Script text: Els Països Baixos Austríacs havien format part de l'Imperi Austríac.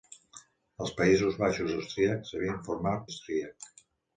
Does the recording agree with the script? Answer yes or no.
no